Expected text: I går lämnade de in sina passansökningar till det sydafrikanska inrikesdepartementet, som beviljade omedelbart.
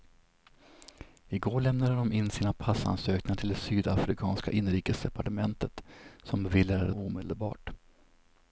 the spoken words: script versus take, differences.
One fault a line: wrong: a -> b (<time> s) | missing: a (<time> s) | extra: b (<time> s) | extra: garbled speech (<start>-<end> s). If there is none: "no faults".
no faults